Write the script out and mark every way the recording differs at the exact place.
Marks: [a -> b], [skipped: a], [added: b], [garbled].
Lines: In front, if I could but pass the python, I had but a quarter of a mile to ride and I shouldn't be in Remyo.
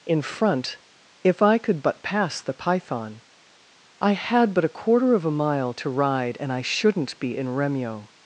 In front, if I could but pass the python, I had but a quarter of a mile to ride and I shouldn't be in Remyo.